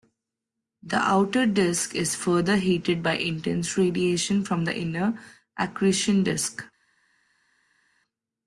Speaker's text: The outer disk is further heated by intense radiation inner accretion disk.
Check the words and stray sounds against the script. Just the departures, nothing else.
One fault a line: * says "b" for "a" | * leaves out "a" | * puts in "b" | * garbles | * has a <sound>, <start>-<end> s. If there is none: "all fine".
* puts in "from the"